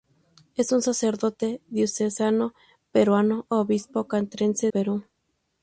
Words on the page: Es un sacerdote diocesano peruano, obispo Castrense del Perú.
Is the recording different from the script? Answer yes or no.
yes